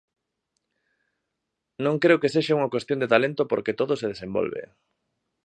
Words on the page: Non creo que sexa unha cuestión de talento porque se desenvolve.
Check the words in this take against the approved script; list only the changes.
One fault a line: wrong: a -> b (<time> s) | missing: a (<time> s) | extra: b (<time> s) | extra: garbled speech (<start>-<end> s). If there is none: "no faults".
extra: todo (3.8 s)